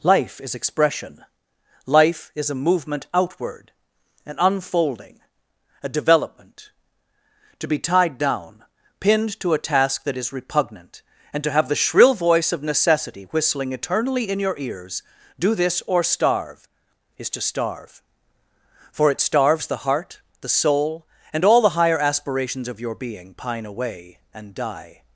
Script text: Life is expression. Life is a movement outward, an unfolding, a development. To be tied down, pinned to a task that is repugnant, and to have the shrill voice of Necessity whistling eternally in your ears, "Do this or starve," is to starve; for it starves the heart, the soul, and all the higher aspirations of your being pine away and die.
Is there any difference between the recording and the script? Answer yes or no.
no